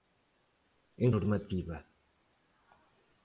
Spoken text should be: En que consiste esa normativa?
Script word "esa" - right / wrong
wrong